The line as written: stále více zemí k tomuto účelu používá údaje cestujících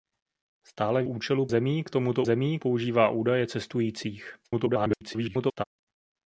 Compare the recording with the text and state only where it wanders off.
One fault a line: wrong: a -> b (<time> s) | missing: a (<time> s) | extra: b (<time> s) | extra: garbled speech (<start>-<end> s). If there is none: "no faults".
wrong: více -> účelu (1.0 s)
wrong: účelu -> zemí (2.2 s)
extra: garbled speech (4.4-5.6 s)